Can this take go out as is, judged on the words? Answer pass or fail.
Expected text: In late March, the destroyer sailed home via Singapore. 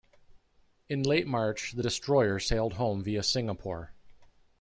pass